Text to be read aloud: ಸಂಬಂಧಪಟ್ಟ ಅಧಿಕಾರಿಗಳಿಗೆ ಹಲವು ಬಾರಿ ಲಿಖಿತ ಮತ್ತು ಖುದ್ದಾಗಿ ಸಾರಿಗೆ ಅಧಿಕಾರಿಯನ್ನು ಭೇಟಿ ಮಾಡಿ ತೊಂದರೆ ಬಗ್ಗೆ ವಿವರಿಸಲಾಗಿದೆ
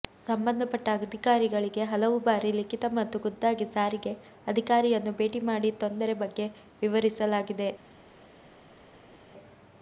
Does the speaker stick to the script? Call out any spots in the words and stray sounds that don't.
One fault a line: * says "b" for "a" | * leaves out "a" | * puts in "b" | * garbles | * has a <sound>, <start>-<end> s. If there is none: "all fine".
all fine